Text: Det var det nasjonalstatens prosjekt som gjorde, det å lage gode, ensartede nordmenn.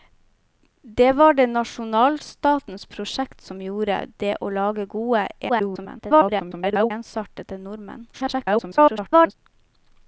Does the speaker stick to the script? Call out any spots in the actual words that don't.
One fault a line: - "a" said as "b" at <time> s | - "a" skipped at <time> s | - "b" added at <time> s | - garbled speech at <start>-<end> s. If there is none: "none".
- garbled speech at 5.5-6.9 s
- garbled speech at 8.1-9.3 s